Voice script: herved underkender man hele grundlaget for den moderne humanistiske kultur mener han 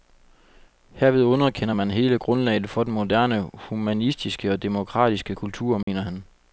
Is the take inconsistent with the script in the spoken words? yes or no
yes